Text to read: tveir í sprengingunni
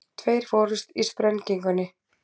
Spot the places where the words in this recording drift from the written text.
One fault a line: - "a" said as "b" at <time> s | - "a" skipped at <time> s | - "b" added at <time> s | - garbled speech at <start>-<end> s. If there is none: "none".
- "fórust" added at 0.5 s